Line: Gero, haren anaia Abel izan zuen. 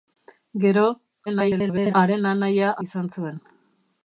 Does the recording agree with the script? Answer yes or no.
no